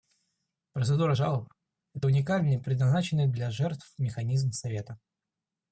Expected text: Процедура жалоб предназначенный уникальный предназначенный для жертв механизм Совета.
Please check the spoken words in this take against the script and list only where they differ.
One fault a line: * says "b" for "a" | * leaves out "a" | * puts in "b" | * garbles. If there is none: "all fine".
* says "это" for "предназначенный"